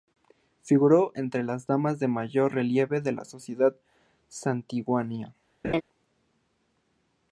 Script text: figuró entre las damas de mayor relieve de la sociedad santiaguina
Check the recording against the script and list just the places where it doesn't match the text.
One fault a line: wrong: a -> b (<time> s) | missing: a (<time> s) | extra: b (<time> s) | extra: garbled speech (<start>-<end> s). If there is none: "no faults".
no faults